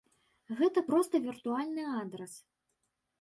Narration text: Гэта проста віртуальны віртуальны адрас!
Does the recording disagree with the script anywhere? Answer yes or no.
yes